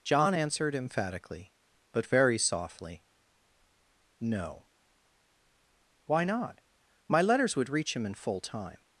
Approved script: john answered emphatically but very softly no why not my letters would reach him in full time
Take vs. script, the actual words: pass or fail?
pass